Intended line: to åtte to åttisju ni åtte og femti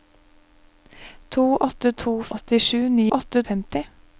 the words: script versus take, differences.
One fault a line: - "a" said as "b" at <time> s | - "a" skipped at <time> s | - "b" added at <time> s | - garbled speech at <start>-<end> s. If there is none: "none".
none